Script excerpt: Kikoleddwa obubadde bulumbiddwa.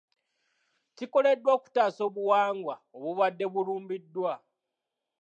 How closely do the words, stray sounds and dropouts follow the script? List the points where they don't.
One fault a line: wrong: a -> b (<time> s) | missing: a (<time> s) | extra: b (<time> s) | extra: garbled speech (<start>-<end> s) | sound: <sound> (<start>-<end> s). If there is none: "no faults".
extra: okutaasa obuwangwa (1.6 s)